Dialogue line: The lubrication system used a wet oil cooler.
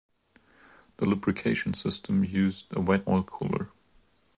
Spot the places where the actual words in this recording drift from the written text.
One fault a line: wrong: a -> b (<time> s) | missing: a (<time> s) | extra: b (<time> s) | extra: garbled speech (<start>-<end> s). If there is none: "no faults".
no faults